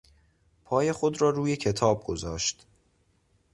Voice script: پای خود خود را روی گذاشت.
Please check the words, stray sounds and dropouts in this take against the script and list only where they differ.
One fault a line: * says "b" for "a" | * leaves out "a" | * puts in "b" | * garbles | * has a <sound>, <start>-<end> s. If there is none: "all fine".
* leaves out "خود"
* puts in "کتاب"